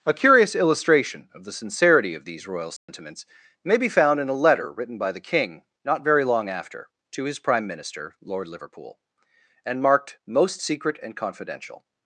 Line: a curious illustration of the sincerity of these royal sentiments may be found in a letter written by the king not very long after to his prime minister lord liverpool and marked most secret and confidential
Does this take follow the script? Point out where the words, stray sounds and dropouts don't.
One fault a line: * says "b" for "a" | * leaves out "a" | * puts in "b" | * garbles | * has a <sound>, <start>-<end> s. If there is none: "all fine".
* has a dropout, 2.8-2.9 s